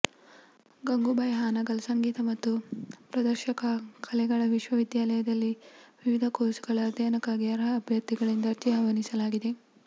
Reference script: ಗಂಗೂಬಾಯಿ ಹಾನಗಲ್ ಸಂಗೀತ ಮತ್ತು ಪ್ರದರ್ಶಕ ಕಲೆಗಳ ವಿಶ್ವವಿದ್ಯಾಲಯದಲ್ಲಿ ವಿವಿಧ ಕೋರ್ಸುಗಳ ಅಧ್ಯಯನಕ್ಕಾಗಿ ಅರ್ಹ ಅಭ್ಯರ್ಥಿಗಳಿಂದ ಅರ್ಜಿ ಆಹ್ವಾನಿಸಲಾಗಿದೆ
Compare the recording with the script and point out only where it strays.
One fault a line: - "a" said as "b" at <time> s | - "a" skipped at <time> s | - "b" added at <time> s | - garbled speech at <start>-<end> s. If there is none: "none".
none